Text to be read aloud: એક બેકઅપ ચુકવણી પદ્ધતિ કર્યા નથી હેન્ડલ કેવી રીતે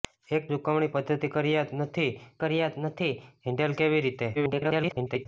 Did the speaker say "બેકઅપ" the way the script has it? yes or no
no